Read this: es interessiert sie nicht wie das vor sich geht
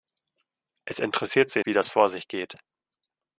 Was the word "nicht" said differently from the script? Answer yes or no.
yes